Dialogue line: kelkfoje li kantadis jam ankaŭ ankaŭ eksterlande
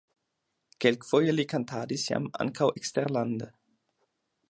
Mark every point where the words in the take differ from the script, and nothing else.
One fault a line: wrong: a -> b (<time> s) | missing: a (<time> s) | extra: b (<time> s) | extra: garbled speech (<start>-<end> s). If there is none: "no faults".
missing: ankaŭ (2.7 s)